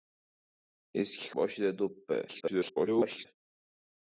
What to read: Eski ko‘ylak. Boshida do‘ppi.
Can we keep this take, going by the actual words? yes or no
no